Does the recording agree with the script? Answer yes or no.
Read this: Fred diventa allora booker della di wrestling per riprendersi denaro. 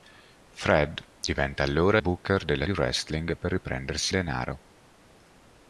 yes